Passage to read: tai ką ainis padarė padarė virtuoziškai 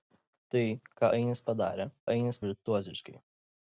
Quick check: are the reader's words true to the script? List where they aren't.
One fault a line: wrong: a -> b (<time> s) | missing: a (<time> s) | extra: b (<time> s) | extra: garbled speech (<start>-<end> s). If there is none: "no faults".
wrong: padarė -> ainis (2.1 s)